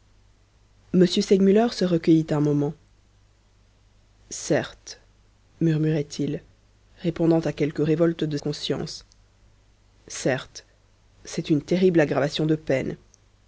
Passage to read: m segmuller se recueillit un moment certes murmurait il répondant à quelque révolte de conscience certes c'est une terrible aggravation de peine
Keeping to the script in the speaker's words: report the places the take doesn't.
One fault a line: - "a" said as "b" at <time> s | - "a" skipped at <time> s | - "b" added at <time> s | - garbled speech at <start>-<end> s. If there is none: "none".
none